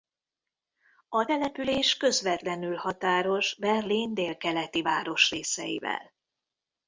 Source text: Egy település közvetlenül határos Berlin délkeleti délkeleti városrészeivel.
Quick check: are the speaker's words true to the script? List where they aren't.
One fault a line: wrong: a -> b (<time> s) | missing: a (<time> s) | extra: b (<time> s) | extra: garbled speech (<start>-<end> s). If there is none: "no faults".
wrong: Egy -> A (1.1 s)
missing: délkeleti (4.8 s)